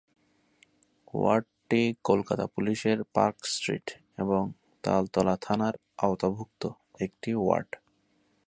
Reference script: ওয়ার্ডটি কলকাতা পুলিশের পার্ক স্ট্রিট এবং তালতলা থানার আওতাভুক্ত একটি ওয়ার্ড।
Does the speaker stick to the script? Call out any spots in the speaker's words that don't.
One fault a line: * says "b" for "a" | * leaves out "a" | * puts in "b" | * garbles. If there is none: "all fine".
all fine